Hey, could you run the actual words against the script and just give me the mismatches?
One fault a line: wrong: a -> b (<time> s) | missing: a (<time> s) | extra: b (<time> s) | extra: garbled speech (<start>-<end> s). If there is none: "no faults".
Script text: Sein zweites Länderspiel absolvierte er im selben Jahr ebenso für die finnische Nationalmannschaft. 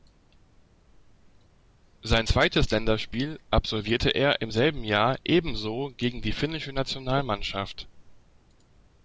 wrong: für -> gegen (6.0 s)